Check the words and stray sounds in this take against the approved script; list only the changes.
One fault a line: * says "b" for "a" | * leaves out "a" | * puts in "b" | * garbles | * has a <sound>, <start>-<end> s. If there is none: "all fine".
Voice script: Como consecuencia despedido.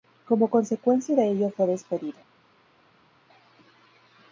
* puts in "de ello fue"